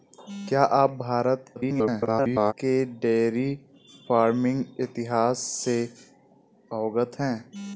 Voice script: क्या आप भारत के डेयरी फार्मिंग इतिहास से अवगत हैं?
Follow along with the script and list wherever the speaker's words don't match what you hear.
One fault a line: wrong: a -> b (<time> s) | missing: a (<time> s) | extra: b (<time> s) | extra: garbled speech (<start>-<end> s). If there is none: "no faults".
extra: garbled speech (1.6-2.5 s)